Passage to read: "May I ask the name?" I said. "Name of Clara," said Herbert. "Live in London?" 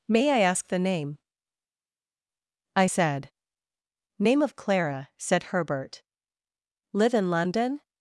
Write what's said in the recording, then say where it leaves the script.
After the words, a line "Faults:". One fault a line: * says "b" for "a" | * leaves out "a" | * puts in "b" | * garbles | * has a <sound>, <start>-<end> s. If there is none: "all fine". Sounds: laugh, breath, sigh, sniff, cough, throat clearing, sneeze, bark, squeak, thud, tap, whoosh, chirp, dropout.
"May I ask the name?" I said. "Name of Clara," said Herbert. "Live in London?"
Faults:
all fine